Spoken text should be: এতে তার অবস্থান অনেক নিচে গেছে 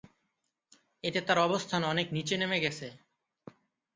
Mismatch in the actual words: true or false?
true